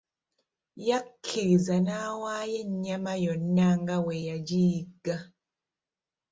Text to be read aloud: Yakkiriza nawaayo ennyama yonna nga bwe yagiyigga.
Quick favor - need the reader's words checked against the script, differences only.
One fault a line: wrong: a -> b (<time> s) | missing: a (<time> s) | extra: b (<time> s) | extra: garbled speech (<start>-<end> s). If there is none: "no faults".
no faults